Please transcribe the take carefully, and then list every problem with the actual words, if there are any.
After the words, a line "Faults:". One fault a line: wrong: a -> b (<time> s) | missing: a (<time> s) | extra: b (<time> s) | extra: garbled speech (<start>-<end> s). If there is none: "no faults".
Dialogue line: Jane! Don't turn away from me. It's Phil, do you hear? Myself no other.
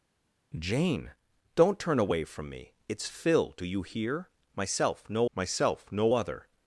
Jane! Don't turn away from me. It's Phil, do you hear? Myself no myself no other.
Faults:
extra: myself no (5.4 s)